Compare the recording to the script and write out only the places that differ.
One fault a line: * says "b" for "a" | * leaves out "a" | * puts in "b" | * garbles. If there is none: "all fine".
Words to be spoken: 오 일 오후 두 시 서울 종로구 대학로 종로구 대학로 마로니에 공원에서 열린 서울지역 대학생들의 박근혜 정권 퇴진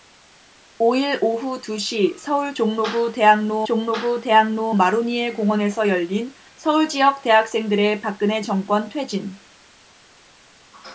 all fine